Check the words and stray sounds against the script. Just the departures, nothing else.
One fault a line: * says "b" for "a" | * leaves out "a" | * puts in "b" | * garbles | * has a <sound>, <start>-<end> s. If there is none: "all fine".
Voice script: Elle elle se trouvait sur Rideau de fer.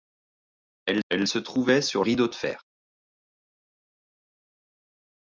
all fine